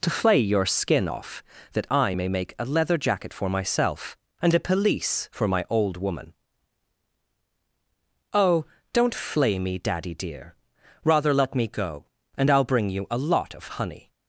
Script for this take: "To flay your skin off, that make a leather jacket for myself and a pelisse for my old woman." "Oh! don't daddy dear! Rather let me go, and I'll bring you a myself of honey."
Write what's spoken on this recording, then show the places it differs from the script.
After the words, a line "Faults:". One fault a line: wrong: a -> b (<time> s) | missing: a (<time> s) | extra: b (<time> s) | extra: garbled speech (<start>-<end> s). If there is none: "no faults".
"To flay your skin off, that I may make a leather jacket for myself and a pelisse for my old woman." "Oh! don't flay me, daddy dear! Rather let me go, and I'll bring you a lot of honey."
Faults:
extra: I may (1.9 s)
extra: flay me (9.1 s)
wrong: myself -> lot (13.2 s)